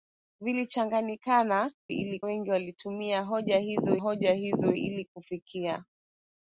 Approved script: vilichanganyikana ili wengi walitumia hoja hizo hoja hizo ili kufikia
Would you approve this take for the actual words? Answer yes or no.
yes